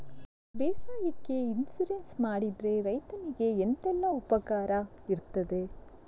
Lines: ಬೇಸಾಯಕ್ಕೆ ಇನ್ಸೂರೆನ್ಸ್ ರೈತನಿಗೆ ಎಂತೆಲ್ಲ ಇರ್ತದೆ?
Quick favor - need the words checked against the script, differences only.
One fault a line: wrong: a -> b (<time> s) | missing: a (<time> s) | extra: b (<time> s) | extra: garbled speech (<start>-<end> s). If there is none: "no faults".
extra: ಮಾಡಿದ್ರೆ (2.2 s)
extra: ಉಪಕಾರ (4.1 s)